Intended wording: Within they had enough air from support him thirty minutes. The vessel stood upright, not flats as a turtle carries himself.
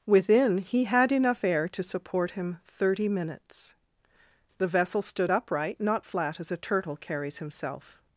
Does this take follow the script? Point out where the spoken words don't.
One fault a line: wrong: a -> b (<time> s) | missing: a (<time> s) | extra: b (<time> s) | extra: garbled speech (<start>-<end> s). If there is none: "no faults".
wrong: they -> he (0.6 s)
wrong: from -> to (1.7 s)
wrong: flats -> flat (6.0 s)